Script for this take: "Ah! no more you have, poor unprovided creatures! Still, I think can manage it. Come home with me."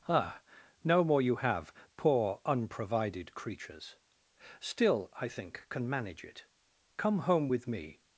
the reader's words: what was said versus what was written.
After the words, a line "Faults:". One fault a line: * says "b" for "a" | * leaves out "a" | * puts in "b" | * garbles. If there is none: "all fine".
"Ah! no more you have, poor unprovided creatures! Still, I think can manage it. Come home with me."
Faults:
all fine